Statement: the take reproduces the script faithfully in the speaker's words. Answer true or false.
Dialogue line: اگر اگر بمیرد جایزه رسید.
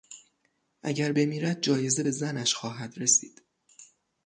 false